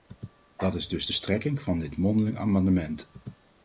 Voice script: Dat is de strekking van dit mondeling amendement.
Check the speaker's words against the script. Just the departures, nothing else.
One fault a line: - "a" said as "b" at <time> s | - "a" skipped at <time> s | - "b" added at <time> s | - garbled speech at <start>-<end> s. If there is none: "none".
- "dus" added at 0.9 s